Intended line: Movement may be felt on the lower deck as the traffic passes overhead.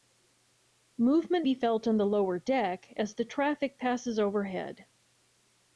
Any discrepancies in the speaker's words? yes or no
yes